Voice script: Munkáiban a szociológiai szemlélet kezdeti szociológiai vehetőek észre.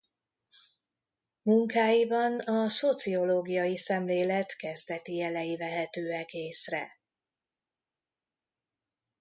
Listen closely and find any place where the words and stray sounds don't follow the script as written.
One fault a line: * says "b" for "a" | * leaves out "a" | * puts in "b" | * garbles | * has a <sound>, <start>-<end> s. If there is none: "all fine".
* says "jelei" for "szociológiai"